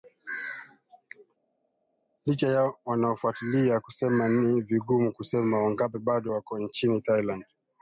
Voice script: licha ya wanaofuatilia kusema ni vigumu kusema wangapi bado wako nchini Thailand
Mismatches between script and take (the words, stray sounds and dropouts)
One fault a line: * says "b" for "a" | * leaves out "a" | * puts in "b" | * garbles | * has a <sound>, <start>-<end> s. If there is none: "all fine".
all fine